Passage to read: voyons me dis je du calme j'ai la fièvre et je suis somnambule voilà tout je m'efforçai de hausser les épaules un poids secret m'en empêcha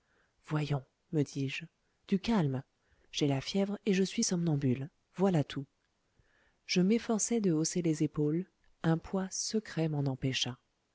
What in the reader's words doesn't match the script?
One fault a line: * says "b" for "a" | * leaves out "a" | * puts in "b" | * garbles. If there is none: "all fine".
all fine